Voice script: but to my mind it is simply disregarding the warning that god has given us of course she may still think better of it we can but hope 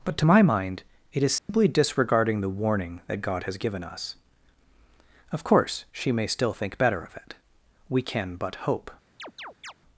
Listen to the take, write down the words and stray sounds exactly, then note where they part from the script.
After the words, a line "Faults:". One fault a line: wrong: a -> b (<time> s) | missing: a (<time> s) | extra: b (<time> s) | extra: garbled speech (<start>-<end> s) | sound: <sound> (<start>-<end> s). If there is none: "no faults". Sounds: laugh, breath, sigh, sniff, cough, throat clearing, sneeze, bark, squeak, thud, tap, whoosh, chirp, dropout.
but to my mind it is simply disregarding the warning that god has given us of course she may still think better of it we can but hope
Faults:
sound: dropout (1.4-1.5 s)
sound: chirp (9.2-9.7 s)